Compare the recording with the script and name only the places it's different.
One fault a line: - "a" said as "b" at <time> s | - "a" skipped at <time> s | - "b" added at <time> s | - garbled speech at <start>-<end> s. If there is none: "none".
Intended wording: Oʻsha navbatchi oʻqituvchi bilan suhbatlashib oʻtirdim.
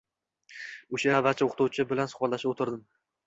none